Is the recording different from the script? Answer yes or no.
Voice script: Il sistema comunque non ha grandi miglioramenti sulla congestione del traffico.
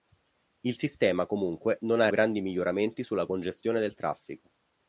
no